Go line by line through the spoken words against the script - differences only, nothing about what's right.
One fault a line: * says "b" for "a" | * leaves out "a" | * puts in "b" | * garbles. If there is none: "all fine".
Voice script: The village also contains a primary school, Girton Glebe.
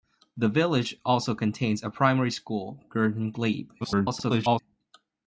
* garbles